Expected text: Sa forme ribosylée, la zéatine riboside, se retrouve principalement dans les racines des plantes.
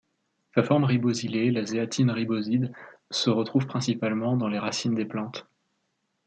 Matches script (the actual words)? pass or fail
pass